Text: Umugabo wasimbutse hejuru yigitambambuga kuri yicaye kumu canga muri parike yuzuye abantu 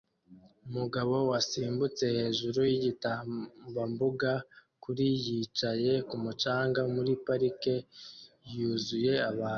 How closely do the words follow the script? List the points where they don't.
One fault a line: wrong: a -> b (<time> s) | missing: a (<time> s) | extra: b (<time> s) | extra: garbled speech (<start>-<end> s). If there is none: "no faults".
no faults